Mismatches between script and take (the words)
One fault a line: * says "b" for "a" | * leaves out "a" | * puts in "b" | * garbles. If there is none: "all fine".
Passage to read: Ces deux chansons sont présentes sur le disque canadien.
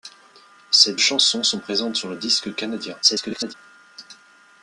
* leaves out "deux"
* garbles